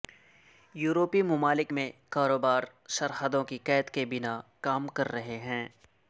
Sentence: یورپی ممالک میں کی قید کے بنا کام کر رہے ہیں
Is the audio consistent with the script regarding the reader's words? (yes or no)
no